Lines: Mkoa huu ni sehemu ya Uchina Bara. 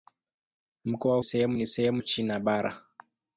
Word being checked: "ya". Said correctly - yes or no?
no